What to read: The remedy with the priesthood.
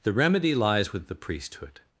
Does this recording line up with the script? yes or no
no